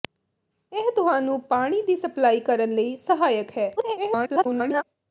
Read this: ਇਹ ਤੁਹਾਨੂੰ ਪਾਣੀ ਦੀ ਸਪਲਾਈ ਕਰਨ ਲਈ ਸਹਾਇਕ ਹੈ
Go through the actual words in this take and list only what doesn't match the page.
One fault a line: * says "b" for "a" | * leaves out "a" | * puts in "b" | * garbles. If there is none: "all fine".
* garbles